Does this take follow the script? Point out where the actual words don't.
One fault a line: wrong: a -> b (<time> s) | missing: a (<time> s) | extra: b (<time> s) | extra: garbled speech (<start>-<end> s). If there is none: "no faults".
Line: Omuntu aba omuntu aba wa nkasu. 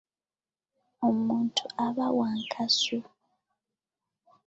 missing: omuntu aba (2.1 s)